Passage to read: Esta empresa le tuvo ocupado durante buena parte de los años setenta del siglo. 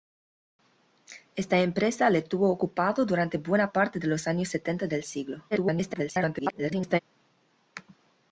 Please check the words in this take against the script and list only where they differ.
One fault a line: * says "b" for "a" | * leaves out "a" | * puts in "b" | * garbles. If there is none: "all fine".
* garbles